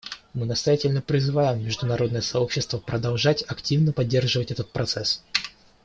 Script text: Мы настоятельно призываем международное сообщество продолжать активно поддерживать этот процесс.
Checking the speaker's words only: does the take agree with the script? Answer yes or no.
yes